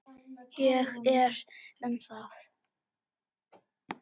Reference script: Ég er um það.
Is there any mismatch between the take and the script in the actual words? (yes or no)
no